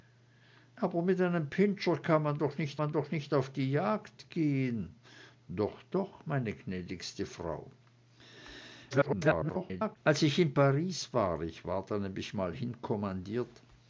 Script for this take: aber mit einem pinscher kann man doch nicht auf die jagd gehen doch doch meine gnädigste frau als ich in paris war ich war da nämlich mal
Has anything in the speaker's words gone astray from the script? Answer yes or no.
yes